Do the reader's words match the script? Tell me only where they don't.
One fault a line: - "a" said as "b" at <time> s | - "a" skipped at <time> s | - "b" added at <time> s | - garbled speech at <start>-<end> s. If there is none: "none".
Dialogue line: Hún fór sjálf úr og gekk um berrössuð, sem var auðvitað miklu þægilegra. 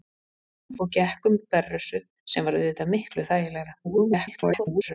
- "fór sjálf úr" skipped at 0.8 s
- garbled speech at 3.8-4.9 s